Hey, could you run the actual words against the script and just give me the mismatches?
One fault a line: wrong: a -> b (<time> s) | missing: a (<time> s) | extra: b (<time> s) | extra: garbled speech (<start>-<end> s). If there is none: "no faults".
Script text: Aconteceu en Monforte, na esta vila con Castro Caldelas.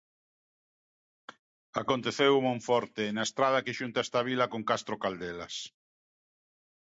extra: estrada que xunta (3.3 s)